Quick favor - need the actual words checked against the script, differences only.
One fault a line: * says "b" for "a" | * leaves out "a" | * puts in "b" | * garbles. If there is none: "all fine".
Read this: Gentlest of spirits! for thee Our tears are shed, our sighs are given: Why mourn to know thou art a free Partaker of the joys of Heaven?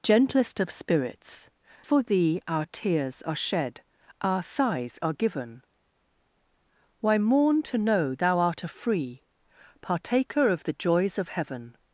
all fine